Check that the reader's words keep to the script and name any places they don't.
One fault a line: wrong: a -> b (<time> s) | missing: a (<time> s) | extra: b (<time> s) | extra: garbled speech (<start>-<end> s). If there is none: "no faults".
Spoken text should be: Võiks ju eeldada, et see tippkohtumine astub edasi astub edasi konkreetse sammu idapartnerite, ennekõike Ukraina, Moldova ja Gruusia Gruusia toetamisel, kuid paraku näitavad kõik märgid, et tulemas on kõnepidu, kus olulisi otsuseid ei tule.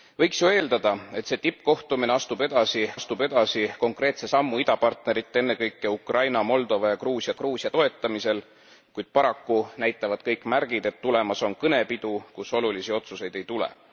no faults